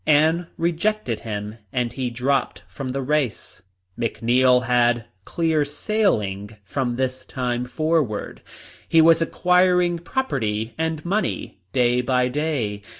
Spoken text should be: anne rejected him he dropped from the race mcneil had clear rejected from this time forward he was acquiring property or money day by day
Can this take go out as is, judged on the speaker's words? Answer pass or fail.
fail